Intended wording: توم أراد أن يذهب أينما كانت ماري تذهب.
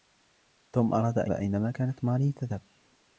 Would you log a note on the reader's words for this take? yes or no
yes